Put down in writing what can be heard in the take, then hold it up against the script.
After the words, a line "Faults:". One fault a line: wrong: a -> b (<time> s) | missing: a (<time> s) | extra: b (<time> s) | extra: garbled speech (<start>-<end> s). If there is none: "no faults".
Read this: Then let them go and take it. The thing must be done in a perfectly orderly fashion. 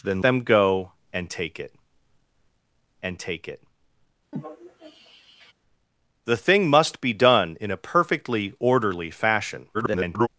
Then them go and take it and take it. The thing must be done in a perfectly orderly fashion. [garbled]
Faults:
missing: let (0.2 s)
extra: and take it (3.0 s)
extra: garbled speech (9.7-10.3 s)